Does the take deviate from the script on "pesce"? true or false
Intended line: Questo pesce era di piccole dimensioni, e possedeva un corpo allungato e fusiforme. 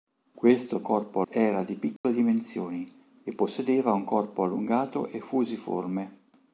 true